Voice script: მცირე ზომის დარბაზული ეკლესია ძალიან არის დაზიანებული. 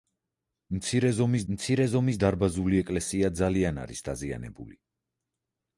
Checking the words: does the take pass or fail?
fail